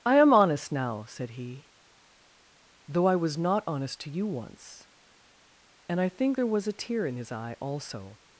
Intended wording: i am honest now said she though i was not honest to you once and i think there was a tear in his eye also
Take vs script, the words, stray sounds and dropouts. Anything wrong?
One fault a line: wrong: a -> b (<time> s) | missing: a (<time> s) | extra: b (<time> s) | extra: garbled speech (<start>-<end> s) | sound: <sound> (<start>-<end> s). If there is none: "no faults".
wrong: she -> he (1.4 s)